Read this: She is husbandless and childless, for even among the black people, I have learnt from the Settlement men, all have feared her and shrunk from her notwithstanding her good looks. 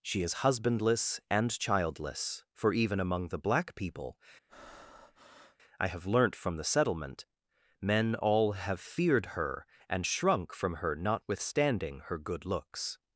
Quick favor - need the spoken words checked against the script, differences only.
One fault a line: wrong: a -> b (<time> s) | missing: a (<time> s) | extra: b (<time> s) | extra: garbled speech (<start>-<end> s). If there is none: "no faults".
no faults